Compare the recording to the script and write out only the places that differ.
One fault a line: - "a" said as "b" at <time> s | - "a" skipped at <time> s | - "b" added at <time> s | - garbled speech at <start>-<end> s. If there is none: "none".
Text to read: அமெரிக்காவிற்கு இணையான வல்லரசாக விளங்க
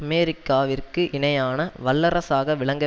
none